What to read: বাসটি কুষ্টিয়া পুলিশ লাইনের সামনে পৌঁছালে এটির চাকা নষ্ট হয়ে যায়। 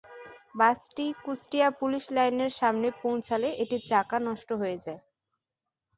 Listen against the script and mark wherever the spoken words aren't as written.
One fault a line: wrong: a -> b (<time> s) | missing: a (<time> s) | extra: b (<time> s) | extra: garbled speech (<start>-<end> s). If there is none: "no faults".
no faults